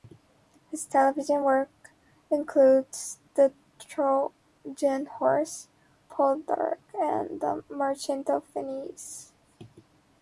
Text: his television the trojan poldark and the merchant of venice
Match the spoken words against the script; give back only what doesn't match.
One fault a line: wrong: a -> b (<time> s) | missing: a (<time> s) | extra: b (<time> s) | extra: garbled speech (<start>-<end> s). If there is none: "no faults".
extra: work includes (1.4 s)
extra: horse (5.1 s)